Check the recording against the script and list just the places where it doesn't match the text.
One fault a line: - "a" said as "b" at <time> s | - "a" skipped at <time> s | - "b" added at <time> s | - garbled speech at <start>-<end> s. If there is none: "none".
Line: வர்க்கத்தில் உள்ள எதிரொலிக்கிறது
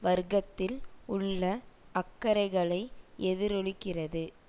- "அக்கறைகளை" added at 1.9 s